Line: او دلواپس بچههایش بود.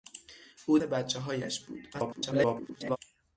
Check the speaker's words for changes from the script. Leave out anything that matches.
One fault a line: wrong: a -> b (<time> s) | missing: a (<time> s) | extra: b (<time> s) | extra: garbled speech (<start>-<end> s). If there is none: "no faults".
missing: دلواپس (0.8 s)
extra: garbled speech (1.9-3.0 s)